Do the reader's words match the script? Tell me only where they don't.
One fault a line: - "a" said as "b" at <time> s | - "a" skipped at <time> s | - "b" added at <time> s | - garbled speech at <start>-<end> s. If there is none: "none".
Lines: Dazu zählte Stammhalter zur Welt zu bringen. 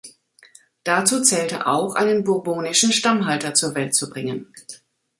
- "auch einen bourbonischen" added at 1.7 s